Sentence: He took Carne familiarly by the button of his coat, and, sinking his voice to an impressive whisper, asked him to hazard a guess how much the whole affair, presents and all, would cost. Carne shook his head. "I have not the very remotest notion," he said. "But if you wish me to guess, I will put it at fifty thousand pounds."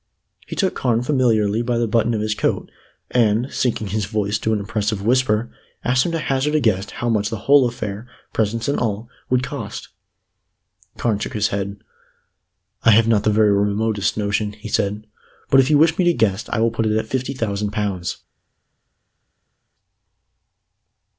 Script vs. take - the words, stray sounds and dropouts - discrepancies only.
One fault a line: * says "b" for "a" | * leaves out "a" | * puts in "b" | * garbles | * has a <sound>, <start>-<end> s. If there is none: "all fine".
all fine